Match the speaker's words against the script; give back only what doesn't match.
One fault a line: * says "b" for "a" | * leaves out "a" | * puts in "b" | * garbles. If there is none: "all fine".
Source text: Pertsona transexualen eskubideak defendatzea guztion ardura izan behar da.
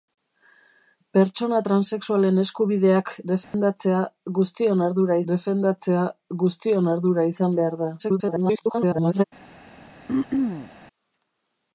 * puts in "defendatzea guztion ardura"
* garbles